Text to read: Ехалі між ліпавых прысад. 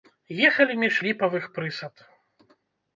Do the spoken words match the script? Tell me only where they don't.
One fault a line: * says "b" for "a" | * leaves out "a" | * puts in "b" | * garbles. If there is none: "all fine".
all fine